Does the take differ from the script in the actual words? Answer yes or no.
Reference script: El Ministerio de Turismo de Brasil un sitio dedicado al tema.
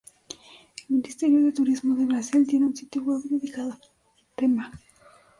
yes